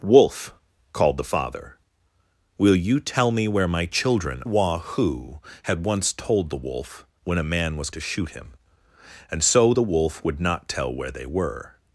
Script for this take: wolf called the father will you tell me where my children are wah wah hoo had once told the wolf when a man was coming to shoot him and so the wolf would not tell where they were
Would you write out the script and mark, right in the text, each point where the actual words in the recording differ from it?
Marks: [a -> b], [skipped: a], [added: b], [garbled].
wolf called the father will you tell me where my children [skipped: are] wah [skipped: wah] hoo had once told the wolf when a man was [skipped: coming] to shoot him and so the wolf would not tell where they were